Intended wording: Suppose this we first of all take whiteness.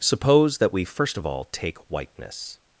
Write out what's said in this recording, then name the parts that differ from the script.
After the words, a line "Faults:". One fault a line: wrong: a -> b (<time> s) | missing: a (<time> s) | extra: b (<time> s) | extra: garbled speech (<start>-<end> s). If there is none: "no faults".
Suppose that we first of all take whiteness.
Faults:
wrong: this -> that (0.6 s)